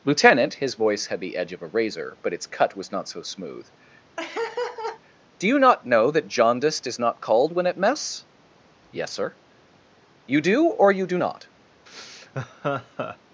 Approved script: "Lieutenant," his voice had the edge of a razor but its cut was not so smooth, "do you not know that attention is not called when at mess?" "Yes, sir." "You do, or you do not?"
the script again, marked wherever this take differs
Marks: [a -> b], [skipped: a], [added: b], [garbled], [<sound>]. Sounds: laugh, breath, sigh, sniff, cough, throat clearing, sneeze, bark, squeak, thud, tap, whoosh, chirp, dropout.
"Lieutenant," his voice had the edge of a razor but its cut was not so smooth, [laugh] "do you not know that [attention -> jaundiced] is not called when at mess?" "Yes, sir." "You do, or you do not?" [laugh]